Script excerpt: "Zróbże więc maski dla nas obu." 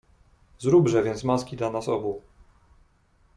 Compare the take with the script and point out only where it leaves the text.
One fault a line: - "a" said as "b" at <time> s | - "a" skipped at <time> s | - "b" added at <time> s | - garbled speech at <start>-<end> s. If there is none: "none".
none